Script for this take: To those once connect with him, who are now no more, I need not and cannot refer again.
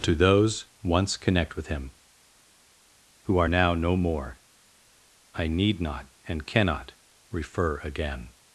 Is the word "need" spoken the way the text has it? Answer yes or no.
yes